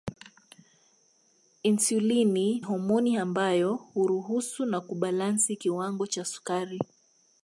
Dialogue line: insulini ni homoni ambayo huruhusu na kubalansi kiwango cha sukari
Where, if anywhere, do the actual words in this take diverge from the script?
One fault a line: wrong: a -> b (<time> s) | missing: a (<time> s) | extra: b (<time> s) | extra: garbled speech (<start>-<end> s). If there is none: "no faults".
missing: ni (2.6 s)